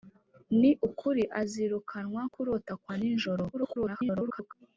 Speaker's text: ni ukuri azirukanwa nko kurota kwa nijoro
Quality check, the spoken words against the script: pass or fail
fail